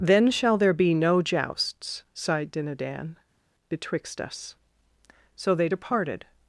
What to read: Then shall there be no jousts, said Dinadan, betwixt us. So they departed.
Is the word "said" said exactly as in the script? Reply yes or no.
no